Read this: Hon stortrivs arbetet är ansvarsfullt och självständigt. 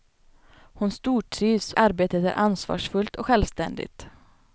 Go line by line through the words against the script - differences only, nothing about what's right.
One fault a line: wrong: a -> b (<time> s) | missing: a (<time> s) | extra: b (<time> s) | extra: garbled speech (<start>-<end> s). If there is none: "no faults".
no faults